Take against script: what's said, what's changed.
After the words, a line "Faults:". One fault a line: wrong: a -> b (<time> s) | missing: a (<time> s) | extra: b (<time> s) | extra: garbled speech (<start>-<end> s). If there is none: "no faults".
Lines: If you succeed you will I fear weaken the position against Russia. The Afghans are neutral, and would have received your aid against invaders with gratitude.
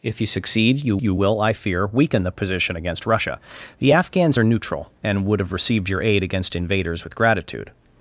If you succeed you you will I fear weaken the position against Russia. The Afghans are neutral, and would have received your aid against invaders with gratitude.
Faults:
extra: you (1.0 s)